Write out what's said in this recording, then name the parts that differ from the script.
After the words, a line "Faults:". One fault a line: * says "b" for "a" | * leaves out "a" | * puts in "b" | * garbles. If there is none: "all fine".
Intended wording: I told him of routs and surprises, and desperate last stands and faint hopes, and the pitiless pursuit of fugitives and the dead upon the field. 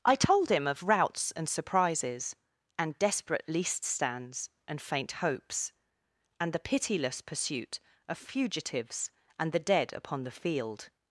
I told him of routs and surprises, and desperate least stands and faint hopes, and the pitiless pursuit of fugitives and the dead upon the field.
Faults:
* says "least" for "last"